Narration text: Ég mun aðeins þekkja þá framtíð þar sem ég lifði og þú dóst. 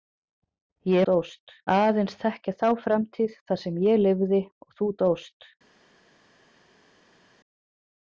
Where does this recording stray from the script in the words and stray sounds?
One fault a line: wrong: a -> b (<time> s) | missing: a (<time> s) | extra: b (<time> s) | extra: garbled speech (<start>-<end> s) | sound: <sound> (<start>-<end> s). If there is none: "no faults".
wrong: mun -> dóst (1.1 s)